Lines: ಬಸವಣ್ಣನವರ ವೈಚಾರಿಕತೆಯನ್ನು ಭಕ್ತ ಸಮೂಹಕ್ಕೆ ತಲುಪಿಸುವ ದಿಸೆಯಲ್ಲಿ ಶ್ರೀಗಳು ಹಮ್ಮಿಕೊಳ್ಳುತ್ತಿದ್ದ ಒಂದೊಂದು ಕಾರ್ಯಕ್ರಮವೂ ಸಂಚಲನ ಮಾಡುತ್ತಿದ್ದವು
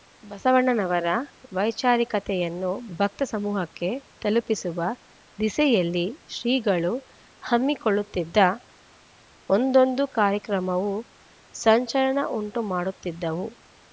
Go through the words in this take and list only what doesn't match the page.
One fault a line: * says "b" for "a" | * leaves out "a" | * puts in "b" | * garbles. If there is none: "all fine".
* puts in "ಉಂಟು"